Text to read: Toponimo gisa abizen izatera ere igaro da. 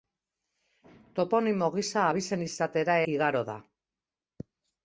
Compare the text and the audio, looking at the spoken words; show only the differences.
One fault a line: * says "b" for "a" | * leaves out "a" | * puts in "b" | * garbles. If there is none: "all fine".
* leaves out "ere"